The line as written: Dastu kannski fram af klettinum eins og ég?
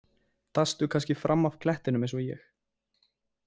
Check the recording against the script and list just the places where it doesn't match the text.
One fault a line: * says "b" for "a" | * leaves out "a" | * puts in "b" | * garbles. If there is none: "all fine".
all fine